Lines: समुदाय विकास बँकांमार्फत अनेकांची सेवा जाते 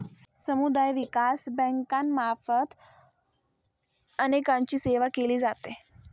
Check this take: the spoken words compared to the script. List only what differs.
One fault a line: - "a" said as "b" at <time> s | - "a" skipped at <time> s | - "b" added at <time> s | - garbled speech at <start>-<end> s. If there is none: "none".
- "केली" added at 5.1 s